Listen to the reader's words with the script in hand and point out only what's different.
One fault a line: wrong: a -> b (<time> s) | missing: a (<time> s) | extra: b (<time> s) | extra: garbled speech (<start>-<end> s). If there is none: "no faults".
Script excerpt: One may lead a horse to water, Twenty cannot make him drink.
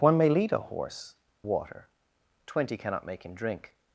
missing: to (1.1 s)